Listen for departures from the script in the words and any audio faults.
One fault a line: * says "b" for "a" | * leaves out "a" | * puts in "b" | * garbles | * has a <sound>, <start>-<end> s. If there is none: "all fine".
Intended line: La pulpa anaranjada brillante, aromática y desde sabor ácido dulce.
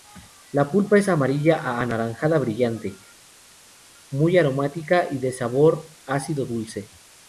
* puts in "es amarilla a"
* puts in "muy"
* says "de" for "desde"